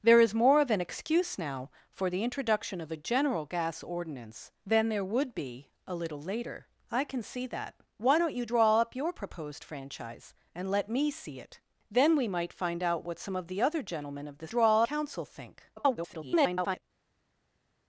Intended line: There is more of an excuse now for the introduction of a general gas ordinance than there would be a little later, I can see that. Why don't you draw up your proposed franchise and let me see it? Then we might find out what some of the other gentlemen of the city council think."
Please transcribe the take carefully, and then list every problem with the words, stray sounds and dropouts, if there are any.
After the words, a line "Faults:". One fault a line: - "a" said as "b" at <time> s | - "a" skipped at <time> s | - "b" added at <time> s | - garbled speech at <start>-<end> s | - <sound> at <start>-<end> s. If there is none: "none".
There is more of an excuse now for the introduction of a general gas ordinance than there would be a little later, I can see that. Why don't you draw up your proposed franchise and let me see it? Then we might find out what some of the other gentlemen of the draw council think." [garbled]
Faults:
- "city" said as "draw" at 14.5 s
- garbled speech at 15.8-16.8 s